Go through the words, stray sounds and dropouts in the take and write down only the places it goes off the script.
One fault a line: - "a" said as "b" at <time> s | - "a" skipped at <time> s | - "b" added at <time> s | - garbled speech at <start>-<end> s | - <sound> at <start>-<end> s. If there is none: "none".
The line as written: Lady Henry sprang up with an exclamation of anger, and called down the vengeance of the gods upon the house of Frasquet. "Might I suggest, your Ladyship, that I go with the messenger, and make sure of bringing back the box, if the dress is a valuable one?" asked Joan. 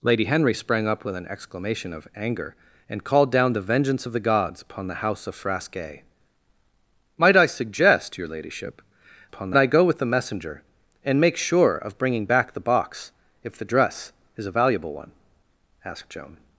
- "that" said as "upon" at 9.2 s